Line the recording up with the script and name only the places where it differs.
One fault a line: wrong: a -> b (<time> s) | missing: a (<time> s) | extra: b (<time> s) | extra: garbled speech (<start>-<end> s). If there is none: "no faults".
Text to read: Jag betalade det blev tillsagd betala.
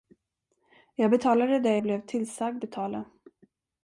no faults